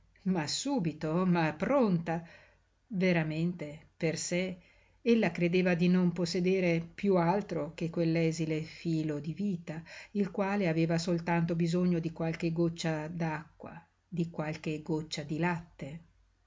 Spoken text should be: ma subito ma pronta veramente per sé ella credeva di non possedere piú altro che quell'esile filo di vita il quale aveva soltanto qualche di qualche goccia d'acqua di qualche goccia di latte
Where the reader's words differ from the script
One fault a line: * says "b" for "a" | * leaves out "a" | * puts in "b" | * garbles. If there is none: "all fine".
* says "bisogno" for "qualche"